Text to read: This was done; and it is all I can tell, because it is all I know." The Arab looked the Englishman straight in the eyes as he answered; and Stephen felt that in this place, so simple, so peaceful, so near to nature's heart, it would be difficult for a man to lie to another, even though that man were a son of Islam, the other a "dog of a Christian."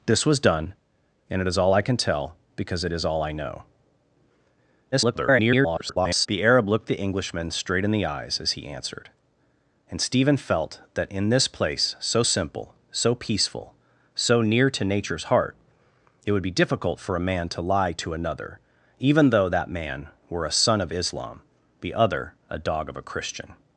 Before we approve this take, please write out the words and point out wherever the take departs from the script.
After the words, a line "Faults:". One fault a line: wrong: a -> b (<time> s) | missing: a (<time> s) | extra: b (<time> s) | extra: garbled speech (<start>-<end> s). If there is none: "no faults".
This was done; and it is all I can tell, because it is all I know." [garbled] The Arab looked the Englishman straight in the eyes as he answered; and Stephen felt that in this place, so simple, so peaceful, so near to nature's heart, it would be difficult for a man to lie to another, even though that man were a son of Islam, the other a "dog of a Christian."
Faults:
extra: garbled speech (4.9-6.3 s)